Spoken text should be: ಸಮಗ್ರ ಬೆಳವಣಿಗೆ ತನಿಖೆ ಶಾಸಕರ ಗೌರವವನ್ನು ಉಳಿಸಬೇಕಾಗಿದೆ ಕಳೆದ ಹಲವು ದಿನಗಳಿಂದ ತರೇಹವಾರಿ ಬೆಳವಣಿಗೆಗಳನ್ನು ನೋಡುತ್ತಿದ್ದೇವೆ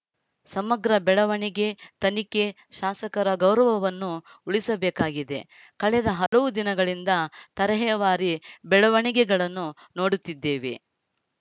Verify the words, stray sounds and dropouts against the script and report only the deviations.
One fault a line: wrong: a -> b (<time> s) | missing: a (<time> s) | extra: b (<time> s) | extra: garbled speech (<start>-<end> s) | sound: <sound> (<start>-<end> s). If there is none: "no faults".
sound: dropout (6.3-6.3 s)